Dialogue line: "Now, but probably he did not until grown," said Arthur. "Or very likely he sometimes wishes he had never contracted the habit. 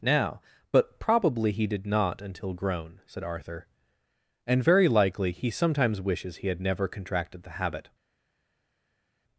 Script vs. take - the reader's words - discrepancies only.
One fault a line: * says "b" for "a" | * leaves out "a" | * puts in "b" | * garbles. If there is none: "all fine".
* says "And" for "Or"